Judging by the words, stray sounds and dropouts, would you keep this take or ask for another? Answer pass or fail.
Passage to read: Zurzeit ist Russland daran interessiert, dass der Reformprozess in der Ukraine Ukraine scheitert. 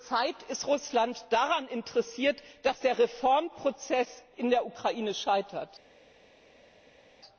fail